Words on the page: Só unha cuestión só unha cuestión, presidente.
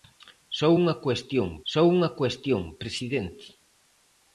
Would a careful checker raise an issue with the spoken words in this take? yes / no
no